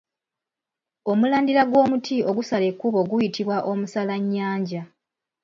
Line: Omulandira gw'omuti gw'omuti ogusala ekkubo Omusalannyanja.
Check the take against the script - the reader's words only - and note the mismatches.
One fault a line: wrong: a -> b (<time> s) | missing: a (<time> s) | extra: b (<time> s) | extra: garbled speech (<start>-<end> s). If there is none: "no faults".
missing: gw'omuti (2.1 s)
extra: guyitibwa (3.1 s)